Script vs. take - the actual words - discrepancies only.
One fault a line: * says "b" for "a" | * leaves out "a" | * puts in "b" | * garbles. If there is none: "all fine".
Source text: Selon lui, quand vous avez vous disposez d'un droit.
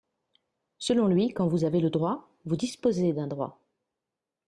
* puts in "le droit"